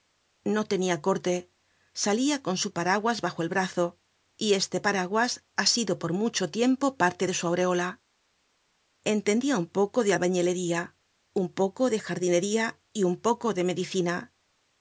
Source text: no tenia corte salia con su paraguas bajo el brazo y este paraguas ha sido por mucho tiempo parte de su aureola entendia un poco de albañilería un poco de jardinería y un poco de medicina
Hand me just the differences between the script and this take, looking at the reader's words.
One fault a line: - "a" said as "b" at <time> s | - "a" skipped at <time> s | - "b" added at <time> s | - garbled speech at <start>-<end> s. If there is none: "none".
none